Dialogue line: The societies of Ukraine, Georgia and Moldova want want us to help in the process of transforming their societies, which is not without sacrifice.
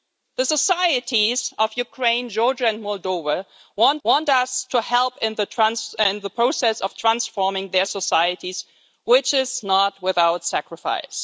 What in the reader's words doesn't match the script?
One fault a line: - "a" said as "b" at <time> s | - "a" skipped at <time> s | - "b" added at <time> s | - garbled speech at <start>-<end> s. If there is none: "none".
none